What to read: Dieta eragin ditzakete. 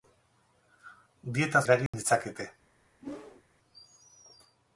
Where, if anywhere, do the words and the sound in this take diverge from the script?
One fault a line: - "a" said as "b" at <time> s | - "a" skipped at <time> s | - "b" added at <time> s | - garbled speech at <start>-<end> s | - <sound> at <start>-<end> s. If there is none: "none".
- dropout at 1.9-1.9 s
- whoosh at 3.0-3.4 s